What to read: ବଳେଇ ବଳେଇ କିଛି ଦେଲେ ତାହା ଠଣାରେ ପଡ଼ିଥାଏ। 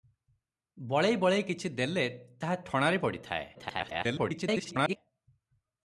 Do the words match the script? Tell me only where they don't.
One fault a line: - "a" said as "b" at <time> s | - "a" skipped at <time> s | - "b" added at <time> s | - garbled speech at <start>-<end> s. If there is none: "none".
- garbled speech at 3.5-5.0 s